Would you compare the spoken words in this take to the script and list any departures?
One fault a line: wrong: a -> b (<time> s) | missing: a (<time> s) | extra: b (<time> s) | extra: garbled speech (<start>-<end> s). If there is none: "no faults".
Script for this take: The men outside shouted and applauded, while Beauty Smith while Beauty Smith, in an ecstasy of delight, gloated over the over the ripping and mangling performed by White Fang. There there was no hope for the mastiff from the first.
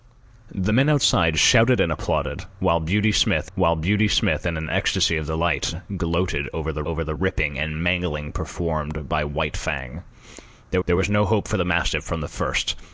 no faults